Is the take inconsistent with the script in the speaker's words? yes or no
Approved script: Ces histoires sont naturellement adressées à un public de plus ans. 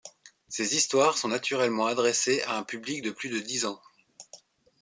yes